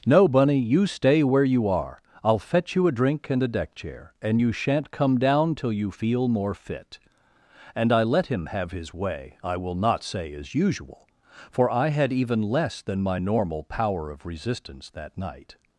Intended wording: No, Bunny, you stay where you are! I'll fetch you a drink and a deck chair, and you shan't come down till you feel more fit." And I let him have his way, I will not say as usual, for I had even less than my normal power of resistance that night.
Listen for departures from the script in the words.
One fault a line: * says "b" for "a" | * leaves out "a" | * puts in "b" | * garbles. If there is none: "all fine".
all fine